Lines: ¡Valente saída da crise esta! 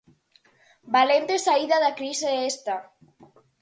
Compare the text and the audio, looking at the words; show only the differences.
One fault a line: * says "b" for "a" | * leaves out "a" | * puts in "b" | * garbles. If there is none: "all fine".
all fine